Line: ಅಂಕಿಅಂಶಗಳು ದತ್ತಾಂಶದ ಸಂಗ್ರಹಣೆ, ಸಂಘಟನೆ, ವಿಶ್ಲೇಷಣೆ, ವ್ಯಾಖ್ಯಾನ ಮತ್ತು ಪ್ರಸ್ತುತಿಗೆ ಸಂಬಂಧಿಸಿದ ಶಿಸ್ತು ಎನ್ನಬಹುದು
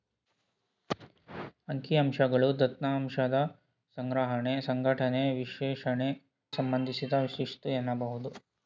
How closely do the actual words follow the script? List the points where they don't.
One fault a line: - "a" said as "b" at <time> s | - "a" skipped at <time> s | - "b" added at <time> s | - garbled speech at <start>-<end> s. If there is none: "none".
- "ವ್ಯಾಖ್ಯಾನ ಮತ್ತು ಪ್ರಸ್ತುತಿಗೆ" skipped at 6.1 s